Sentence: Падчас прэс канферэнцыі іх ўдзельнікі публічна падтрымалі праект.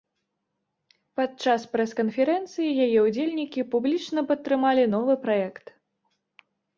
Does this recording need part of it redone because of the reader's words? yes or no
yes